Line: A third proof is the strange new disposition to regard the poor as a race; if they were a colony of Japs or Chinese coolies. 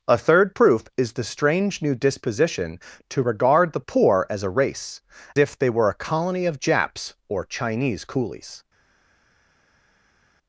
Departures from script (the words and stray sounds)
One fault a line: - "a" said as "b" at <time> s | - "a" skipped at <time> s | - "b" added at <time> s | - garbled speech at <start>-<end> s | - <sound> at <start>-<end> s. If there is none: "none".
none